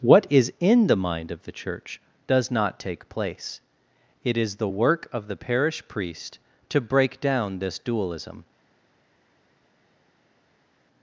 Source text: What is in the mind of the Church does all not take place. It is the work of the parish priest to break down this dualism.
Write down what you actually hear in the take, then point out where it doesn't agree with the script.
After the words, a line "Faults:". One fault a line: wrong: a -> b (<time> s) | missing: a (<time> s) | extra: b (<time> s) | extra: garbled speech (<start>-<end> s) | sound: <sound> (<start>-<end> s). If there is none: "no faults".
What is in the mind of the Church does not take place. It is the work of the parish priest to break down this dualism.
Faults:
missing: all (2.5 s)